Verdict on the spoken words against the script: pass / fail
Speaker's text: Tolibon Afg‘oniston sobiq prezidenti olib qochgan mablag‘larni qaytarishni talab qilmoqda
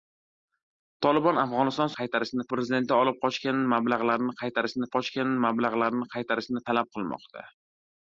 fail